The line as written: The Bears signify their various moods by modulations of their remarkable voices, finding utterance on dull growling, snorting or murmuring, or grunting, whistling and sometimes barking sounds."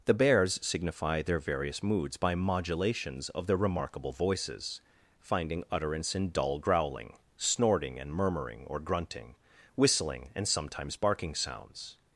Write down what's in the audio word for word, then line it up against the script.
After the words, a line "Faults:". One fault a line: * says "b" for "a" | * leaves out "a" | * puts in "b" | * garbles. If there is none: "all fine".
The Bears signify their various moods by modulations of their remarkable voices, finding utterance in dull growling, snorting and murmuring, or grunting, whistling and sometimes barking sounds."
Faults:
* says "in" for "on"
* says "and" for "or"